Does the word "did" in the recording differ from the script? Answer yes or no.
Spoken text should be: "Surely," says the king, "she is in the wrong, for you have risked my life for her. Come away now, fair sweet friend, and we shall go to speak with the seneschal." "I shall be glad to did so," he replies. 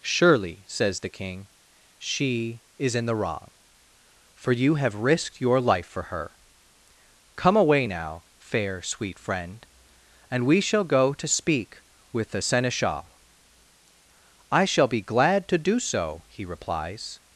yes